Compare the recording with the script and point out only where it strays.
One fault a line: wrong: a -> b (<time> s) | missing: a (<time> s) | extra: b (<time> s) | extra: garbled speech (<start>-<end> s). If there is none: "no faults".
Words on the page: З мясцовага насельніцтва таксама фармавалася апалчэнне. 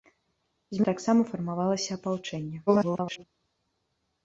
missing: мясцовага насельніцтва (0.8 s)
extra: garbled speech (2.7-3.2 s)